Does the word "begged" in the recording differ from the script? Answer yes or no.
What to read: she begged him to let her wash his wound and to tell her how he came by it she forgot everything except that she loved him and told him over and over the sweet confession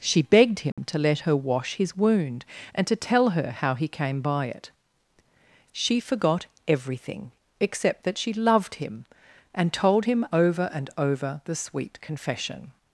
no